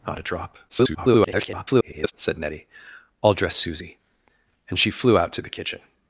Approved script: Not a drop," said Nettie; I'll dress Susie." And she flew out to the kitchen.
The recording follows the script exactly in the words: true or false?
false